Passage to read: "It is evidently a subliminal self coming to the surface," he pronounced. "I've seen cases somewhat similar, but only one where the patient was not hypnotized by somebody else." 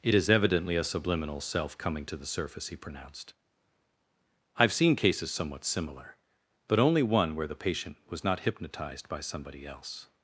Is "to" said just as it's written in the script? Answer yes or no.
yes